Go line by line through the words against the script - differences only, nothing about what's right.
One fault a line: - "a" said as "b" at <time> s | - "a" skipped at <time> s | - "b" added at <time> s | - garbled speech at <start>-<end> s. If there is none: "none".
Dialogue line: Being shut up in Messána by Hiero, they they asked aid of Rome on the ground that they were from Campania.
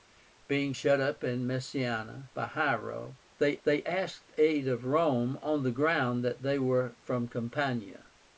none